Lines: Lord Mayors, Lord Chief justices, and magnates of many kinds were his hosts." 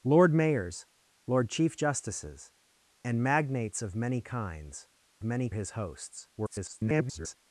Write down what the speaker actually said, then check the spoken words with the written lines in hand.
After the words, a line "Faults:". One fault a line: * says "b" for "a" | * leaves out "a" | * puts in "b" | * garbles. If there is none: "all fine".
Lord Mayors, Lord Chief justices, and magnates of many kinds many his hosts." [garbled]
Faults:
* says "many" for "were"
* garbles